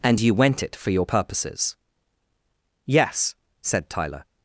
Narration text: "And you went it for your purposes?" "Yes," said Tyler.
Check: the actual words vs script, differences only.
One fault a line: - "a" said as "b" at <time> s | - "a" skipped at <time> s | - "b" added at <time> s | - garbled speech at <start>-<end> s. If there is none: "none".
none